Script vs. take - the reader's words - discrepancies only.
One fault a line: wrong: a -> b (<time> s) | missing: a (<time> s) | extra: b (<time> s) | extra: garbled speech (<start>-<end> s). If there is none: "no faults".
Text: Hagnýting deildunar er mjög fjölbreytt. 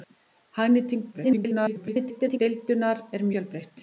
extra: garbled speech (1.1-2.4 s)
missing: mjög (3.3 s)